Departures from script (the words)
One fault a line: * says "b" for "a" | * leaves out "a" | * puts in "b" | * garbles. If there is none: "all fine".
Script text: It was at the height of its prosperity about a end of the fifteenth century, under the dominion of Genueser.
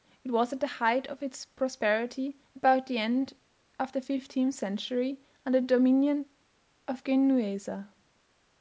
* says "the" for "a"